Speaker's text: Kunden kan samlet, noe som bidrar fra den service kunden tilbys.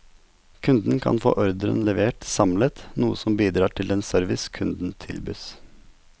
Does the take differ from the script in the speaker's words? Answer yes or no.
yes